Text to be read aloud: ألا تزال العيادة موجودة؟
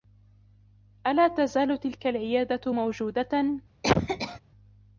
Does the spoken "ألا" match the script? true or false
true